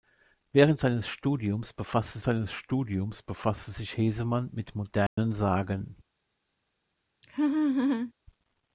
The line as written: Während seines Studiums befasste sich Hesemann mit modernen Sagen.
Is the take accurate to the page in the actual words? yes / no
no